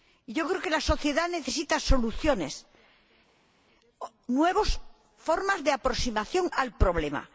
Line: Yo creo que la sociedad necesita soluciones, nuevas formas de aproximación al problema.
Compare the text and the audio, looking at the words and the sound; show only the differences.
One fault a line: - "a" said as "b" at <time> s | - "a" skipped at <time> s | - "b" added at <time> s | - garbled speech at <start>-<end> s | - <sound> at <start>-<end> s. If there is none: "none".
none